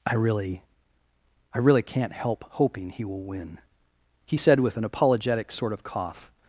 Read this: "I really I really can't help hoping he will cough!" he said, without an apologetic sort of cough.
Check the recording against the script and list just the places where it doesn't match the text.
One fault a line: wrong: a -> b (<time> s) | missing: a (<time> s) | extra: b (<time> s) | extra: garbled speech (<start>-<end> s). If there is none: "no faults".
wrong: cough -> win (3.2 s)
wrong: without -> with (4.6 s)